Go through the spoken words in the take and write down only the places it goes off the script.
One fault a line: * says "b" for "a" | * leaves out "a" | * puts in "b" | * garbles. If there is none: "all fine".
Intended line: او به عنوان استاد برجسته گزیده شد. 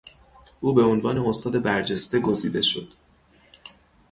all fine